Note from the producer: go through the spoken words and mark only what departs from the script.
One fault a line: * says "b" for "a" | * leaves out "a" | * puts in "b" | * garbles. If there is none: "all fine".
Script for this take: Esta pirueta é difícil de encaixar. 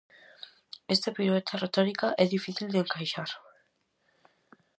* puts in "retórica"